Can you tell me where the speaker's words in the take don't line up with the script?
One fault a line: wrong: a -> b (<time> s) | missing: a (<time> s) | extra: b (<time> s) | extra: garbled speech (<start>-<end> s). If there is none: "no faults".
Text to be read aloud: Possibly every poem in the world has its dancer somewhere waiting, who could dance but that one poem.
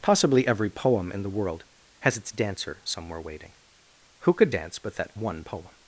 no faults